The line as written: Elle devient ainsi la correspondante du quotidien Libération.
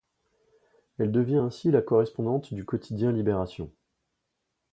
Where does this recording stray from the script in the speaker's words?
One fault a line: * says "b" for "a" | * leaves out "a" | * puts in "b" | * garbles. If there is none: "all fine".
all fine